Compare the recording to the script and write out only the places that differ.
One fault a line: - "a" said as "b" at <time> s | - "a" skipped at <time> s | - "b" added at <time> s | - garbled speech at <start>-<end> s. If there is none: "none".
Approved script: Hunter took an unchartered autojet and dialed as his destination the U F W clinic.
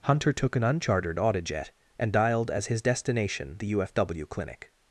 none